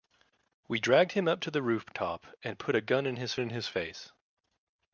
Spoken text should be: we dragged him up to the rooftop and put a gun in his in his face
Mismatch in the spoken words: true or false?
false